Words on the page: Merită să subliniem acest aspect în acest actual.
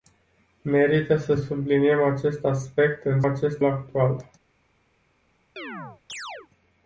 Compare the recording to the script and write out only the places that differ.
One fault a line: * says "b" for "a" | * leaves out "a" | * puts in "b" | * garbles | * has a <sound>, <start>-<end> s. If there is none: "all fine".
* has a chirp, 5.6-6.5 s